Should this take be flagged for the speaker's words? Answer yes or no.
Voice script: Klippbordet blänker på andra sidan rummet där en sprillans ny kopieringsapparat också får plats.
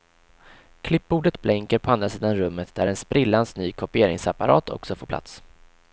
no